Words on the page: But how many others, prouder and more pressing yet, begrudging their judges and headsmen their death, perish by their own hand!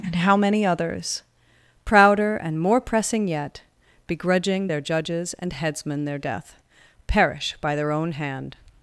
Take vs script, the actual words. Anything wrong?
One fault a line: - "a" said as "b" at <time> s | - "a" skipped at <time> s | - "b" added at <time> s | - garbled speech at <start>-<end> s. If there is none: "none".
- "But" said as "And" at 0.0 s